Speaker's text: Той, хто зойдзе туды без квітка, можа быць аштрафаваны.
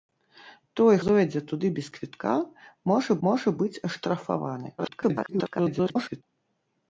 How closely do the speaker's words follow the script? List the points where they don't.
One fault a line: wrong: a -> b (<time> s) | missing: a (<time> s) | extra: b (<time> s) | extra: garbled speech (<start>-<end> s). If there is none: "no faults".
missing: хто (0.9 s)
extra: можа (3.3 s)
extra: garbled speech (4.8-6.2 s)